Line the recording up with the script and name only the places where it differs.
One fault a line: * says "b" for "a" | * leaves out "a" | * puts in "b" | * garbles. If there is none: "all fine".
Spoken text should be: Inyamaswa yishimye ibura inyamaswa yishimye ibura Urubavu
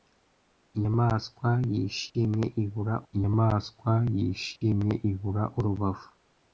all fine